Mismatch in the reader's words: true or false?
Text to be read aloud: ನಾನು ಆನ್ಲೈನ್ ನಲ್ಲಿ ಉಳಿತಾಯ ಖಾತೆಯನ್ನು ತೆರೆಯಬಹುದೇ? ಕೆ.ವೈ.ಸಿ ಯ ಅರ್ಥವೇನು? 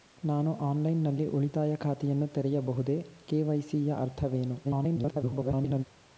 true